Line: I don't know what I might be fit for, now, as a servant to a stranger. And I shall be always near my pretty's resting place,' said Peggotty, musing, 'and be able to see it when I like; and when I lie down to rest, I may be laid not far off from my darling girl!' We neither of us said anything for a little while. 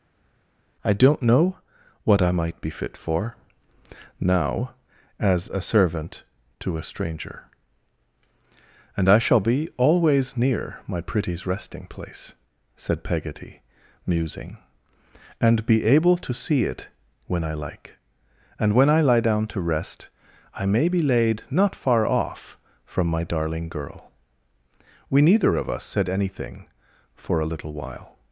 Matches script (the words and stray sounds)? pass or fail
pass